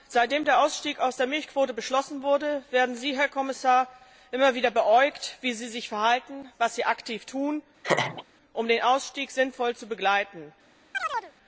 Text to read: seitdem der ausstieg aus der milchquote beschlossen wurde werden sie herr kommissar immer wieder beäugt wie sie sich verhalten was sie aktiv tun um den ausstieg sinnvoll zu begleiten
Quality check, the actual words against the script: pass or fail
pass